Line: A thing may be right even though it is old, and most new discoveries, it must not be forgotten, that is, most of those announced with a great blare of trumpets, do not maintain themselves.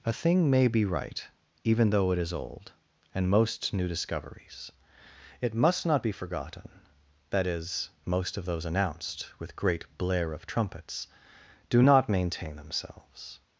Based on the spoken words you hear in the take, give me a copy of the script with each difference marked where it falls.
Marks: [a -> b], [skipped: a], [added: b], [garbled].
A thing may be right even though it is old, and most new discoveries, it must not be forgotten, that is, most of those announced with [skipped: a] great blare of trumpets, do not maintain themselves.